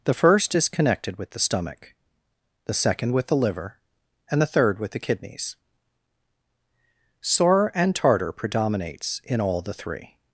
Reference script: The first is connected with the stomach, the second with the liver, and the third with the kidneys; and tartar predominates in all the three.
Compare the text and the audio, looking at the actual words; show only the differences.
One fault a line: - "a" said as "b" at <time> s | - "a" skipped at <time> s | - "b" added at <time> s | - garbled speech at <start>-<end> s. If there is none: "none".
- "sore" added at 7.2 s